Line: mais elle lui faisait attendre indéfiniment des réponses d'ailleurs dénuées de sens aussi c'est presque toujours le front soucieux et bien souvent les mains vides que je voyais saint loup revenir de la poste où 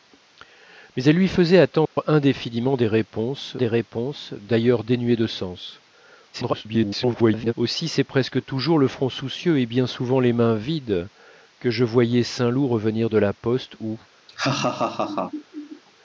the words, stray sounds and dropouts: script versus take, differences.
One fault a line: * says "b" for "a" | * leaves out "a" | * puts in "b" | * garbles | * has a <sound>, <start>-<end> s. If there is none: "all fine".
* has a dropout, 1.9-2.0 s
* puts in "des réponses"
* garbles
* has a laugh, 14.3-15.8 s